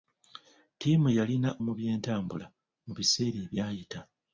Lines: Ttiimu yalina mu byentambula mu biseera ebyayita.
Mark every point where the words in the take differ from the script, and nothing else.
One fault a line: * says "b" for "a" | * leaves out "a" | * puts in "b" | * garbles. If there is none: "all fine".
all fine